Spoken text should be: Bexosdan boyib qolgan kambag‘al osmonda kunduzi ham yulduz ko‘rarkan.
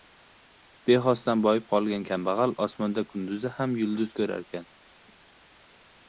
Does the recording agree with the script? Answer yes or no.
yes